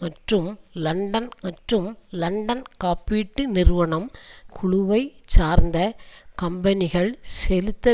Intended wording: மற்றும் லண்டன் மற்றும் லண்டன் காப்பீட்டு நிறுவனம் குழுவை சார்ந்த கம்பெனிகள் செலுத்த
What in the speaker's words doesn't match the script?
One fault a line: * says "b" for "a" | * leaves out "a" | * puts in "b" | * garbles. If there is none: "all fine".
all fine